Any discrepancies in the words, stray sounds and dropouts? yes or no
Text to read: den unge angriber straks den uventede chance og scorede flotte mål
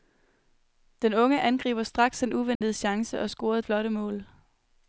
yes